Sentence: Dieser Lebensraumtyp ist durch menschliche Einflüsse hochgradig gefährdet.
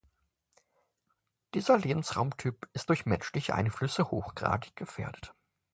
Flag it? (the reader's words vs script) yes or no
no